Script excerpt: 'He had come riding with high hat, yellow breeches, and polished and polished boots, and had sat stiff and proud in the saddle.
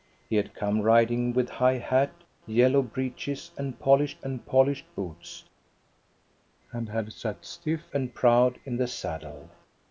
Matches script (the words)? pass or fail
pass